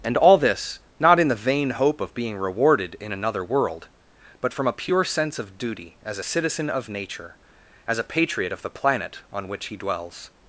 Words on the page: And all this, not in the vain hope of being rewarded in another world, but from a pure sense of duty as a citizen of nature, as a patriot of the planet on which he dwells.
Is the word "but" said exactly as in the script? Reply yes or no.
yes